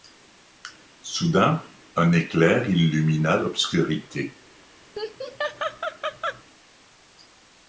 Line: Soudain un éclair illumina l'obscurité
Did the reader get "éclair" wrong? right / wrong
right